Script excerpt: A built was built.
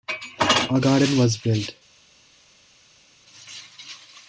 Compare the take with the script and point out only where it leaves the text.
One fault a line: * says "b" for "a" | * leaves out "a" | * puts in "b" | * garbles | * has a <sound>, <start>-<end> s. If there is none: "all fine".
* says "garden" for "built"